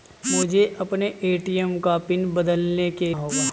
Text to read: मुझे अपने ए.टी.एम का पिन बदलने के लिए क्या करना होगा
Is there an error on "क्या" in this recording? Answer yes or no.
yes